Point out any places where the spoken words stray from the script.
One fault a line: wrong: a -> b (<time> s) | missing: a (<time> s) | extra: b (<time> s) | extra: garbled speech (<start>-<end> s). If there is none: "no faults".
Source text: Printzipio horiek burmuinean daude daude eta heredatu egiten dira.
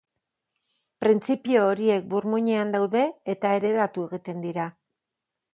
missing: daude (3.0 s)